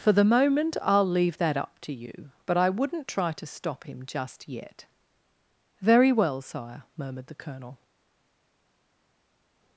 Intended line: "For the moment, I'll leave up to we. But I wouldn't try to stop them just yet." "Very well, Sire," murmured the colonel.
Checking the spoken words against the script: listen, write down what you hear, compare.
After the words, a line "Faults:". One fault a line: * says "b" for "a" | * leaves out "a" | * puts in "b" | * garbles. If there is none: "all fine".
"For the moment, I'll leave that up to you. But I wouldn't try to stop him just yet." "Very well, Sire," murmured the colonel.
Faults:
* puts in "that"
* says "you" for "we"
* says "him" for "them"